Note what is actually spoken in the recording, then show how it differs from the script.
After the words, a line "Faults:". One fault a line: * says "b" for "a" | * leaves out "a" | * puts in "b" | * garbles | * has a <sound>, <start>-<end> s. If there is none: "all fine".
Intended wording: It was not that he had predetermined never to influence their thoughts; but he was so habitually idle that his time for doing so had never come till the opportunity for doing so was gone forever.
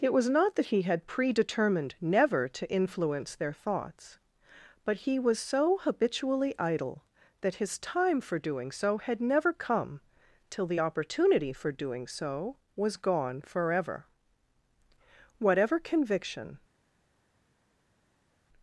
It was not that he had predetermined never to influence their thoughts; but he was so habitually idle that his time for doing so had never come till the opportunity for doing so was gone forever. Whatever conviction
Faults:
* puts in "Whatever conviction"